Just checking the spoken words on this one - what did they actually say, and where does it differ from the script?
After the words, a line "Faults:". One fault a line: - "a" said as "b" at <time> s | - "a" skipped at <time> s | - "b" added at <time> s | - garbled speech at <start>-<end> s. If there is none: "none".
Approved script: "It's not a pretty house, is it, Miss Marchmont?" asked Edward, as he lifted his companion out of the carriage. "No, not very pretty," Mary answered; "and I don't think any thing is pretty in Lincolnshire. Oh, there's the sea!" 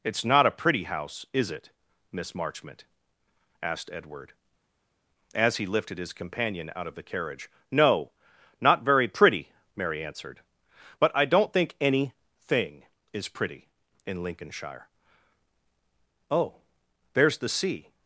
"It's not a pretty house, is it, Miss Marchmont?" asked Edward, as he lifted his companion out of the carriage. "No, not very pretty," Mary answered; "but I don't think any thing is pretty in Lincolnshire. Oh, there's the sea!"
Faults:
- "and" said as "but" at 11.0 s